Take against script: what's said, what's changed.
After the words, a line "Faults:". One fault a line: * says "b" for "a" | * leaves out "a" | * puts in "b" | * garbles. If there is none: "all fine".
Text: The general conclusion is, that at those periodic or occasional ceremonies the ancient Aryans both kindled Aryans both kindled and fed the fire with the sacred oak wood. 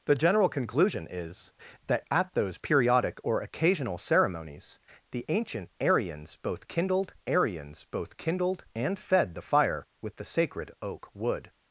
The general conclusion is, that at those periodic or occasional ceremonies the ancient Aryans both kindled Aryans both kindled and fed the fire with the sacred oak wood.
Faults:
all fine